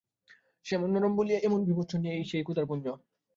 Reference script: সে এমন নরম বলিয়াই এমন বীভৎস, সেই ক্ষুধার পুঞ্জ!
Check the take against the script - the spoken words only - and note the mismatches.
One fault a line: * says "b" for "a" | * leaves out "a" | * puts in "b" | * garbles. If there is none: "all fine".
all fine